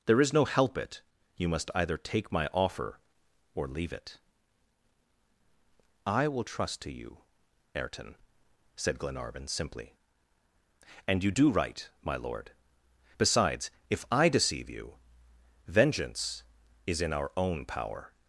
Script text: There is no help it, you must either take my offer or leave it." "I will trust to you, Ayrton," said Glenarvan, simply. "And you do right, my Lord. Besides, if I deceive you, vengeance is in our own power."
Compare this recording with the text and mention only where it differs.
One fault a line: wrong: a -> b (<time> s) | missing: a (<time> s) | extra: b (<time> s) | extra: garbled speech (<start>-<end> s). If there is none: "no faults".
no faults